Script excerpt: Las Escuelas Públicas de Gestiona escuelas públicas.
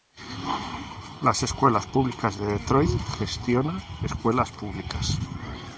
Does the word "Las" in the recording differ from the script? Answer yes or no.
no